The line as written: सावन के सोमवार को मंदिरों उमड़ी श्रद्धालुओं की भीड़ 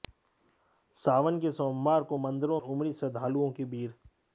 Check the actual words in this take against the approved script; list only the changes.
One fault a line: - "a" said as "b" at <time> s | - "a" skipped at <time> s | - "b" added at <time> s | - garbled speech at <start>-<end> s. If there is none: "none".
none